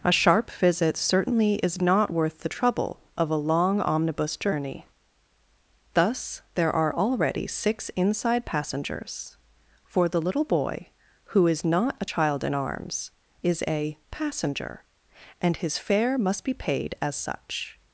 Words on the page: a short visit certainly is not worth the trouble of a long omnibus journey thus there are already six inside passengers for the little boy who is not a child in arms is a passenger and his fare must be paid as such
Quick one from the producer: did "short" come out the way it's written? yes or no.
no